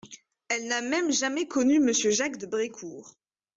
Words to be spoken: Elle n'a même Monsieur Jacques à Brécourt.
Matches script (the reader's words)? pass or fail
fail